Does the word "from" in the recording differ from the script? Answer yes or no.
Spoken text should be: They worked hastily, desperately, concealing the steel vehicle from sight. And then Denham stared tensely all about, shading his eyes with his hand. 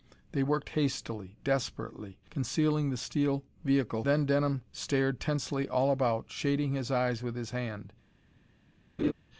yes